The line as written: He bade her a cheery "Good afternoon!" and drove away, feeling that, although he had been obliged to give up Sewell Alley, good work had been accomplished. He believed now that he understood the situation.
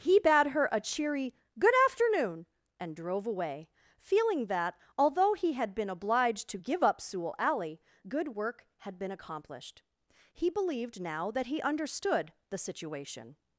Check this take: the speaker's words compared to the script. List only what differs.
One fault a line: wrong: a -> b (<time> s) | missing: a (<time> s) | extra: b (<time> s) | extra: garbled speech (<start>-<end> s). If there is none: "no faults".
no faults